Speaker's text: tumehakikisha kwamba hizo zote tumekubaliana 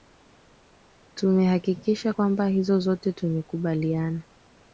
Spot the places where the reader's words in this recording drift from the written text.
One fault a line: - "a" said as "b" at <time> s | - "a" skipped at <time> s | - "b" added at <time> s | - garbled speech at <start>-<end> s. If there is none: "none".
none